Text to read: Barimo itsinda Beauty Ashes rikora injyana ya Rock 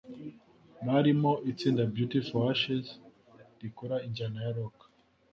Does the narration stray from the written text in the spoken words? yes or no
yes